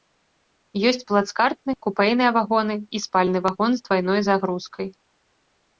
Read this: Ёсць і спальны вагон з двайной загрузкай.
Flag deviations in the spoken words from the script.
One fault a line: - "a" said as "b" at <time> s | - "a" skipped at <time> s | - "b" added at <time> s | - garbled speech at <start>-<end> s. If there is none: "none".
- "плацкартны купэйныя вагоны" added at 1.1 s